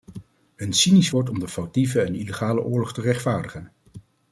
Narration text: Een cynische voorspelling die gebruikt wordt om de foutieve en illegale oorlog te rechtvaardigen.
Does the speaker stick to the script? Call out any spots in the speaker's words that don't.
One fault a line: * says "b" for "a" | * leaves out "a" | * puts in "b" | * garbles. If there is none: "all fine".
* leaves out "voorspelling die gebruikt"